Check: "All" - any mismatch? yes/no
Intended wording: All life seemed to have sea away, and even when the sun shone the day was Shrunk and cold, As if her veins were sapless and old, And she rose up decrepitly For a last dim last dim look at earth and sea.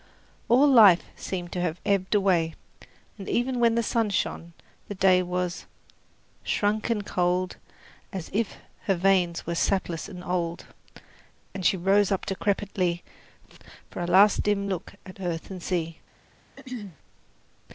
no